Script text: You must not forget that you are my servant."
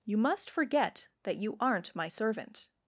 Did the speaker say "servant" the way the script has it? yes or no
yes